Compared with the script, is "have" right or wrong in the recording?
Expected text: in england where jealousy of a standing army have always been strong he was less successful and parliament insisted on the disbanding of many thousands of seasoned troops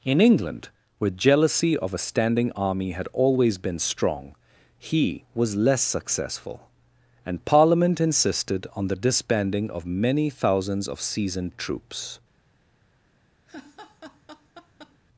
wrong